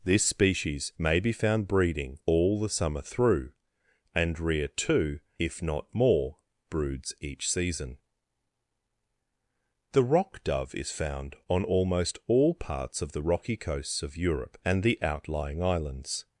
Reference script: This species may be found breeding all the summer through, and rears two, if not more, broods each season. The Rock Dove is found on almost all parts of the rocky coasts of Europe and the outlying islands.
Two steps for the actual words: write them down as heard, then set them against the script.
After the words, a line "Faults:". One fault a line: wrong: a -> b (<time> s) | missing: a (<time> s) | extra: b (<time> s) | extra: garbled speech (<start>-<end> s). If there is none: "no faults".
This species may be found breeding all the summer through, and rear two, if not more, broods each season. The Rock Dove is found on almost all parts of the rocky coasts of Europe and the outlying islands.
Faults:
wrong: rears -> rear (4.4 s)